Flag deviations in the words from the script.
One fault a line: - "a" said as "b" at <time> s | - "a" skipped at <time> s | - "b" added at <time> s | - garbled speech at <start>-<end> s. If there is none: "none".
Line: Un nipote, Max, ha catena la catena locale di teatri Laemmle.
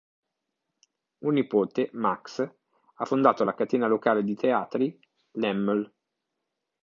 - "catena" said as "fondato" at 3.0 s